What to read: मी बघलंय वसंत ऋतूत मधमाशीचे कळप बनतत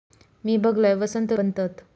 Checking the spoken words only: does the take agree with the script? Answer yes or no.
no